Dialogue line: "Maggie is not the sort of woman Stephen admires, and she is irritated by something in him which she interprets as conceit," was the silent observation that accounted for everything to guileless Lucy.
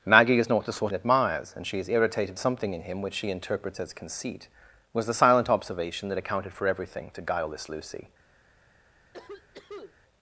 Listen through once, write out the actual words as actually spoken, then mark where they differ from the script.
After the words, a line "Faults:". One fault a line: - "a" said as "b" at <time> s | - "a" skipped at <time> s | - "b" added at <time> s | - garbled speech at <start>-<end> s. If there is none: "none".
"Maggie is not the sort admires, and she is irritated something in him which she interprets as conceit," was the silent observation that accounted for everything to guileless Lucy.
Faults:
- "of woman Stephen" skipped at 0.9 s
- "by" skipped at 2.4 s